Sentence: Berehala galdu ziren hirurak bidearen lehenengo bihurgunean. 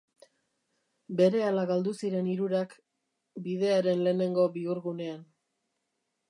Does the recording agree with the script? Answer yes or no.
yes